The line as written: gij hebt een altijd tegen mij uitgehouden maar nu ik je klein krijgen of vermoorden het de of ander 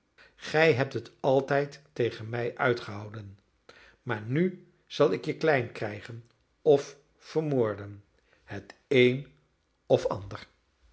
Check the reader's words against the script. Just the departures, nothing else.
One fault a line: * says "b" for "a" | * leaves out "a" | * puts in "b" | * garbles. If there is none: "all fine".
* says "het" for "een"
* puts in "zal"
* says "een" for "de"